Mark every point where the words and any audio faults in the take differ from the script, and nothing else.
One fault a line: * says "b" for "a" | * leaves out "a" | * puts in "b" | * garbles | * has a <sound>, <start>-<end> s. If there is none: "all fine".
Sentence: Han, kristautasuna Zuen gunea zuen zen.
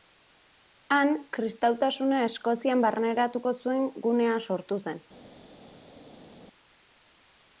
* puts in "Eskozian barneratuko"
* says "sortu" for "zuen"